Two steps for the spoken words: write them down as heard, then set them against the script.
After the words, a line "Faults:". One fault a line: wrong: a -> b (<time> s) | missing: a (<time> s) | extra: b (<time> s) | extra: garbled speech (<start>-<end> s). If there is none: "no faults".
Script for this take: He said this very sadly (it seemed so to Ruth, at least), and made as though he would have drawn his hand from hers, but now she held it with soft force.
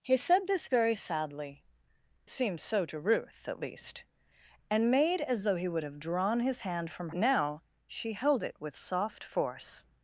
He said this very sadly (seemed so to Ruth, at least), and made as though he would have drawn his hand from now she held it with soft force.
Faults:
missing: it (1.6 s)
missing: hers but (7.1 s)